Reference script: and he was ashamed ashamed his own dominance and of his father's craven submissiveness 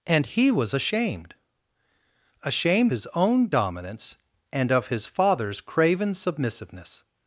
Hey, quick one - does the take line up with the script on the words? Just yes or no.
yes